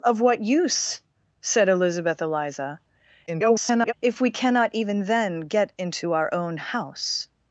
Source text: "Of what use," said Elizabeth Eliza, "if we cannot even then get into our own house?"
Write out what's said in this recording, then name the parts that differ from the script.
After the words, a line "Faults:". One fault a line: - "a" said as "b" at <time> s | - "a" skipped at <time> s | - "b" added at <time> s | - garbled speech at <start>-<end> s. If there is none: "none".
"Of what use," said Elizabeth Eliza, [garbled] "if we cannot even then get into our own house?"
Faults:
- garbled speech at 3.3-3.9 s